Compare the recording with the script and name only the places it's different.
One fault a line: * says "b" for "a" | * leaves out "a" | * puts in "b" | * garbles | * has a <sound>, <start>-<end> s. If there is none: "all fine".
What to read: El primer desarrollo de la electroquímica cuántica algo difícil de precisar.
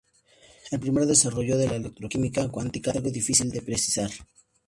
all fine